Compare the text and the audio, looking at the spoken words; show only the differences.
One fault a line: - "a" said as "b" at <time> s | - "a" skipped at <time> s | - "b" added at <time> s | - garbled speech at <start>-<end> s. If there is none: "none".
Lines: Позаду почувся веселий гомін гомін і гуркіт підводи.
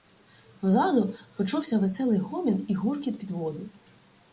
- "гомін" skipped at 2.6 s